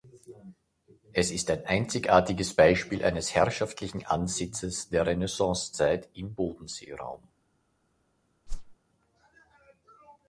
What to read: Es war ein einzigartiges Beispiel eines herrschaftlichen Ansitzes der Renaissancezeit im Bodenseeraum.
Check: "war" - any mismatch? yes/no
yes